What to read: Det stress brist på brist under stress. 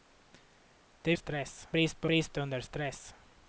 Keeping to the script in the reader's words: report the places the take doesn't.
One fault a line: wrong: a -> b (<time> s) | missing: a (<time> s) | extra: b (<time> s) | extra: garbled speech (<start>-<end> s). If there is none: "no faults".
no faults